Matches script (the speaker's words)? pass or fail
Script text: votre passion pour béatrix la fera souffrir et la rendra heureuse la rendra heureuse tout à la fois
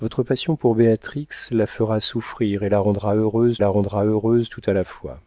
pass